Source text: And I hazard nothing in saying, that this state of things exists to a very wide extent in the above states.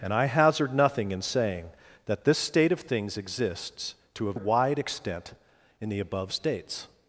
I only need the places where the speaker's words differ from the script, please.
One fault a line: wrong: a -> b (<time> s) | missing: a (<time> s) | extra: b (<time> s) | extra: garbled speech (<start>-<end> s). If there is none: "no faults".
missing: very (4.3 s)